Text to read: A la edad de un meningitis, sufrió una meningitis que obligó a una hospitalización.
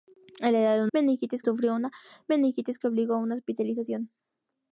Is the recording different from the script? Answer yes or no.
no